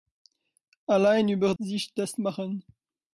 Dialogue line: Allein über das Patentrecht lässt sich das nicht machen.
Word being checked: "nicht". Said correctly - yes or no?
no